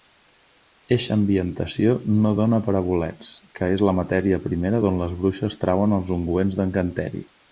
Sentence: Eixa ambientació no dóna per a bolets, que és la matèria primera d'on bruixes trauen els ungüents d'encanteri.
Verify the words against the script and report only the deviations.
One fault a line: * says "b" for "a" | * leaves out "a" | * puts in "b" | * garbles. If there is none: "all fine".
* puts in "les"